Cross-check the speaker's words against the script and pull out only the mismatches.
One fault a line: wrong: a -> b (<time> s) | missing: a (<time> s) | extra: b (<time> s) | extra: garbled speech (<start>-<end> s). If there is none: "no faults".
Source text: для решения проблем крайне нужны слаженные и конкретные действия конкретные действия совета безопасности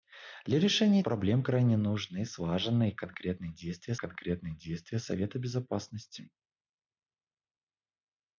no faults